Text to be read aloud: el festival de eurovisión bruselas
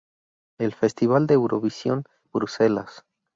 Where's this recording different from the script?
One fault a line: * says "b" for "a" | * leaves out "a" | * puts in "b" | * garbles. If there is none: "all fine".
all fine